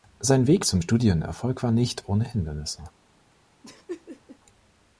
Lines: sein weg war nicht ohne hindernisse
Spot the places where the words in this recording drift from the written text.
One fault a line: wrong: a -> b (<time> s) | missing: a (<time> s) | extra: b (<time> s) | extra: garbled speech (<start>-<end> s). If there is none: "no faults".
extra: zum studienerfolg (0.6 s)